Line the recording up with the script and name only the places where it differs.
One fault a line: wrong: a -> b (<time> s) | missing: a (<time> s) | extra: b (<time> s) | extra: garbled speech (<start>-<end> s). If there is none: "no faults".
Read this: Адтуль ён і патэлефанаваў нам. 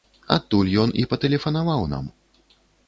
no faults